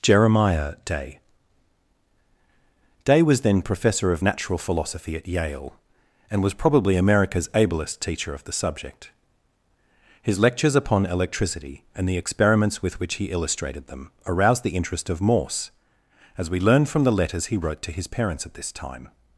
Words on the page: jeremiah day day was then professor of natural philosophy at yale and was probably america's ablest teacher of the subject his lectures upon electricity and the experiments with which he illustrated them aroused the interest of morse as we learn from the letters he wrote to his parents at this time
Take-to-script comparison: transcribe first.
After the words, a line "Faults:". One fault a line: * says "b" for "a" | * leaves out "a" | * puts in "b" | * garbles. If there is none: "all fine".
jeremiah day day was then professor of natural philosophy at yale and was probably america's ablest teacher of the subject his lectures upon electricity and the experiments with which he illustrated them aroused the interest of morse as we learn from the letters he wrote to his parents at this time
Faults:
all fine